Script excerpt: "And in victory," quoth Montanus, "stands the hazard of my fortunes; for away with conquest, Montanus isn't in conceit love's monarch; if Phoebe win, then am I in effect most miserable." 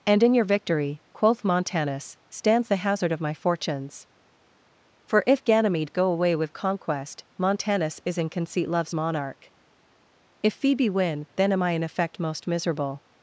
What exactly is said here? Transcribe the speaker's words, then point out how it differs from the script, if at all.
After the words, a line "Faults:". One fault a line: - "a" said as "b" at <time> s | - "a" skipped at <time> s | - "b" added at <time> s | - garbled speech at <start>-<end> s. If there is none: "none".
"And in your victory," quoth Montanus, "stands the hazard of my fortunes; for if Ganymede go away with conquest, Montanus is in conceit love's monarch; if Phoebe win, then am I in effect most miserable."
Faults:
- "your" added at 0.3 s
- "if Ganymede go" added at 5.3 s
- "isn't" said as "is" at 8.1 s